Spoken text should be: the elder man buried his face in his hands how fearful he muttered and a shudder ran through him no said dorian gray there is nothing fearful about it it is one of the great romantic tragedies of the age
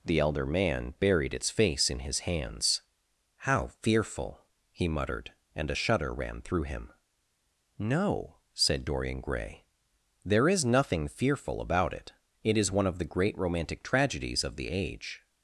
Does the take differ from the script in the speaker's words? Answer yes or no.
yes